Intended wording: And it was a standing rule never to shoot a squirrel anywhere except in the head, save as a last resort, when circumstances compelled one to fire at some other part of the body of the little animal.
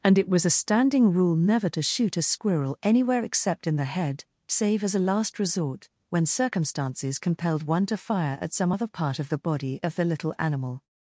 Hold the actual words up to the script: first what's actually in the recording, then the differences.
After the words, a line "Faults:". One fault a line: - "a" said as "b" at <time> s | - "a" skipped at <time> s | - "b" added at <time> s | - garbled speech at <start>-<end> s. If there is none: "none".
And it was a standing rule never to shoot a squirrel anywhere except in the head, save as a last resort, when circumstances compelled one to fire at some other part of the body of the little animal.
Faults:
none